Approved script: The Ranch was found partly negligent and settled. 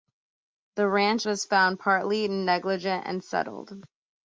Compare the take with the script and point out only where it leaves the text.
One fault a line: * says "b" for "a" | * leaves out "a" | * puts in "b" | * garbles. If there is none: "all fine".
all fine